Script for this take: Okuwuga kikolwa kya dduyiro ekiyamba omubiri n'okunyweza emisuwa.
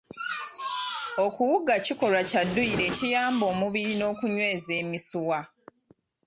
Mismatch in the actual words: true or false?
false